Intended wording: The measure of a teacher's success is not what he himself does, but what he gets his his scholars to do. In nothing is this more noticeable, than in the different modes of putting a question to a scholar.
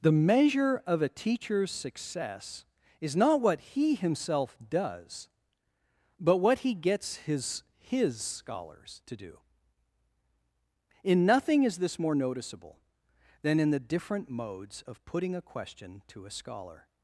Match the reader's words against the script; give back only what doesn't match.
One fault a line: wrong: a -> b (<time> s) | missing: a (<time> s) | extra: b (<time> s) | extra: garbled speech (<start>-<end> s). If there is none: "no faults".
no faults